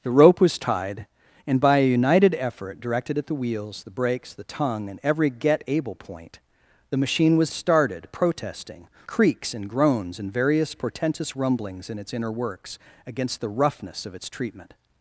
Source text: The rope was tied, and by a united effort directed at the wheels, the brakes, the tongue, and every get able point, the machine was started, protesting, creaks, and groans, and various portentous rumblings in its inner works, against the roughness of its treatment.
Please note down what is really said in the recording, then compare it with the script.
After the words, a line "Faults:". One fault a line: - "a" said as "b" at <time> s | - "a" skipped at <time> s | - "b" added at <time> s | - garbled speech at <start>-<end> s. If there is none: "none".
The rope was tied, and by a united effort directed at the wheels, the brakes, the tongue, and every get able point, the machine was started, protesting, creaks, and groans, and various portentous rumblings in its inner works, against the roughness of its treatment.
Faults:
none